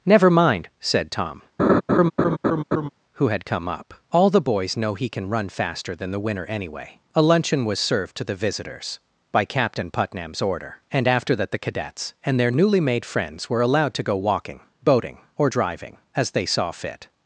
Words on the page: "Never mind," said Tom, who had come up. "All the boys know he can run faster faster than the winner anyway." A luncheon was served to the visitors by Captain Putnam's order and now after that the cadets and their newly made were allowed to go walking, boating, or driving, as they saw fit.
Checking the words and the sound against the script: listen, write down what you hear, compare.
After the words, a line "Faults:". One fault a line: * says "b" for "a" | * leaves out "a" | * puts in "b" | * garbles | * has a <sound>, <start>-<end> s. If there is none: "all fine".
"Never mind," said Tom, who had come up. "All the boys know he can run faster than the winner anyway." A luncheon was served to the visitors by Captain Putnam's order and after that the cadets and their newly made friends were allowed to go walking, boating, or driving, as they saw fit.
Faults:
* has a laugh, 1.6-2.9 s
* leaves out "faster"
* leaves out "now"
* puts in "friends"